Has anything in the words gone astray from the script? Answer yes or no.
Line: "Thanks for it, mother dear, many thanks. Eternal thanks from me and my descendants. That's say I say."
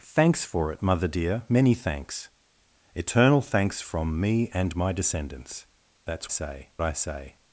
no